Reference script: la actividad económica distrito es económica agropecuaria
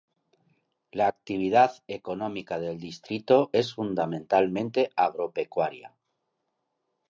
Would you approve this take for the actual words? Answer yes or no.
no